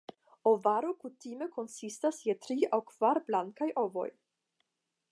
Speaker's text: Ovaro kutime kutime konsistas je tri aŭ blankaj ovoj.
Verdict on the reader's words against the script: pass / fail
fail